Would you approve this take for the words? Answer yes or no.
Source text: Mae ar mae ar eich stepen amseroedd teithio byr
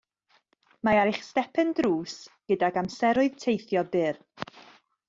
no